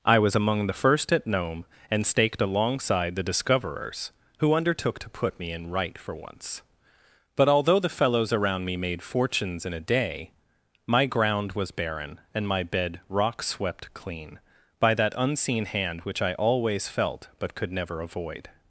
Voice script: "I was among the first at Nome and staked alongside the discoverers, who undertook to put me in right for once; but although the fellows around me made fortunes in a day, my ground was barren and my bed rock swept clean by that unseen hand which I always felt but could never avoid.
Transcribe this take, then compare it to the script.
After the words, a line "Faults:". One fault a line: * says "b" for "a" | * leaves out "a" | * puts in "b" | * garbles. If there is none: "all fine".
"I was among the first at Nome and staked alongside the discoverers, who undertook to put me in right for once; but although the fellows around me made fortunes in a day, my ground was barren and my bed rock swept clean by that unseen hand which I always felt but could never avoid.
Faults:
all fine